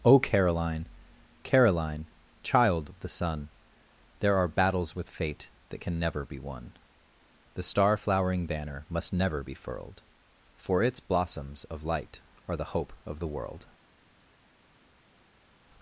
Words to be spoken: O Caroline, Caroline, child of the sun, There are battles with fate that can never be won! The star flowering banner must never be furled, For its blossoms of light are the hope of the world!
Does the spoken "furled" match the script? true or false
true